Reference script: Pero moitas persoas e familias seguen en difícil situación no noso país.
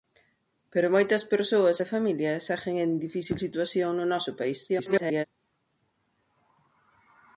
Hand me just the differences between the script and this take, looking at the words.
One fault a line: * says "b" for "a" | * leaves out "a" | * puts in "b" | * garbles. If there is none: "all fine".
* garbles